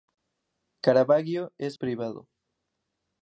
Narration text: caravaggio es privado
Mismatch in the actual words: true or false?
false